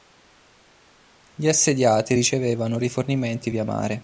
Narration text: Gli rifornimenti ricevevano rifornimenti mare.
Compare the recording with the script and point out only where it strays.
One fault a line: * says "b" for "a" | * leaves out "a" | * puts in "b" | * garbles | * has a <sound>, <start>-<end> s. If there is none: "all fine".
* says "assediati" for "rifornimenti"
* puts in "via"